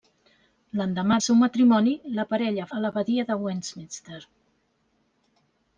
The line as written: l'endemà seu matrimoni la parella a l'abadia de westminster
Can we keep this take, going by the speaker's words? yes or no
yes